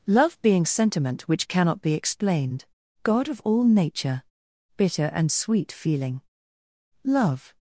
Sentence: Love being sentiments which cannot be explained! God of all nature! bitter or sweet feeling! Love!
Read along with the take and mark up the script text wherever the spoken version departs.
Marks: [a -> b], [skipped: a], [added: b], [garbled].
Love being [sentiments -> sentiment] which cannot be explained! God of all nature! bitter [or -> and] sweet feeling! Love!